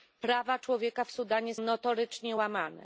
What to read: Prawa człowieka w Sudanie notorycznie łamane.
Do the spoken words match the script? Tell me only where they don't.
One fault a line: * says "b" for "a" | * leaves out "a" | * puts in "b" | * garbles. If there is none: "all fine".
all fine